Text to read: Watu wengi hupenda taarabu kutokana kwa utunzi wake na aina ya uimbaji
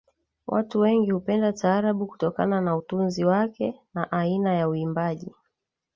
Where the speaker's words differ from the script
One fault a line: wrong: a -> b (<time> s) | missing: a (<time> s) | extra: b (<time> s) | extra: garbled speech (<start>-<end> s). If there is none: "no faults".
wrong: kwa -> na (2.6 s)